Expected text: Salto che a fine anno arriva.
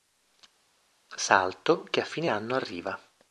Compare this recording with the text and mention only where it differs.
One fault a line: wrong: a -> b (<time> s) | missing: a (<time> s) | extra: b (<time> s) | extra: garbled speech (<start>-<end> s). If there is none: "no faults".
no faults